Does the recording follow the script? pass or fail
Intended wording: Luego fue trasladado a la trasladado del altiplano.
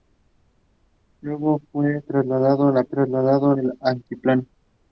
pass